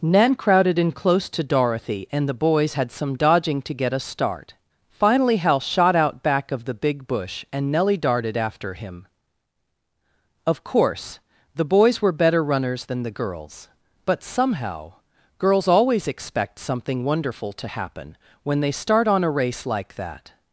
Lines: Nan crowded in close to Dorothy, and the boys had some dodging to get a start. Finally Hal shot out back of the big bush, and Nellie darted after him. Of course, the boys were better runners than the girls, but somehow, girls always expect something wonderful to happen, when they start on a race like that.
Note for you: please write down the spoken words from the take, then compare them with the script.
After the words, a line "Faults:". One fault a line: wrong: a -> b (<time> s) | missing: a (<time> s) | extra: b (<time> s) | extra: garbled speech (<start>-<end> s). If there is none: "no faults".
Nan crowded in close to Dorothy, and the boys had some dodging to get a start. Finally Hal shot out back of the big bush, and Nellie darted after him. Of course, the boys were better runners than the girls, but somehow, girls always expect something wonderful to happen, when they start on a race like that.
Faults:
no faults